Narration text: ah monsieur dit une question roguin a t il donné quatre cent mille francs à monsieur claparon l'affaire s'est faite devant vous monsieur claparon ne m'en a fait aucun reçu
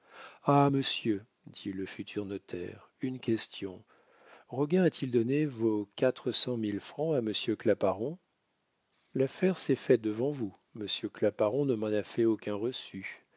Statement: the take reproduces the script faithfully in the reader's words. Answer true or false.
false